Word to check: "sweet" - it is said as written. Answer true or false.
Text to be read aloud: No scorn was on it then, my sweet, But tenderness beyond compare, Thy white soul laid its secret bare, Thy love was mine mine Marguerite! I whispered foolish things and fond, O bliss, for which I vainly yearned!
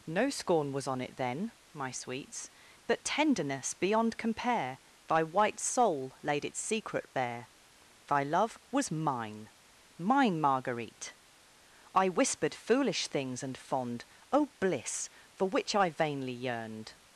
false